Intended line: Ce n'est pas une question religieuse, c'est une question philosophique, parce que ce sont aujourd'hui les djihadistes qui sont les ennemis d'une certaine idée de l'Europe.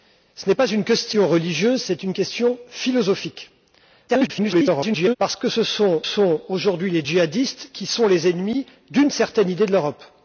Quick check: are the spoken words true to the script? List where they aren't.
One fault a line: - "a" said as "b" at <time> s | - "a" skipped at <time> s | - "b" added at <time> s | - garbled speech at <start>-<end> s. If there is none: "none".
- garbled speech at 4.1-5.2 s
- "sont" added at 6.0 s